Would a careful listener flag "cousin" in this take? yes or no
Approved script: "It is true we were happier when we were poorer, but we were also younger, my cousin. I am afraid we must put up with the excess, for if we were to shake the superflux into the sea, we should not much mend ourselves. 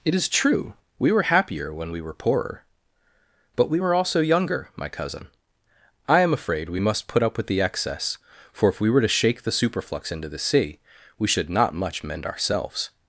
no